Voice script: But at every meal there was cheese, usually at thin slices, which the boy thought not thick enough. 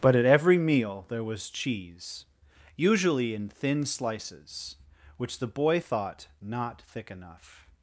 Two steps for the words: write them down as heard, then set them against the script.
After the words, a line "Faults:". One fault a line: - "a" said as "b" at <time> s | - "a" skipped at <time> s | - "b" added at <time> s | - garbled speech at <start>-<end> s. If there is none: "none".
But at every meal there was cheese, usually in thin slices, which the boy thought not thick enough.
Faults:
- "at" said as "in" at 3.4 s